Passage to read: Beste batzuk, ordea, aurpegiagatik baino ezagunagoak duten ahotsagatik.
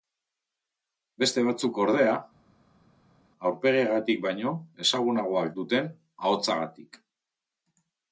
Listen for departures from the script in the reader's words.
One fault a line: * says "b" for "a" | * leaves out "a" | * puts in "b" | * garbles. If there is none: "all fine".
all fine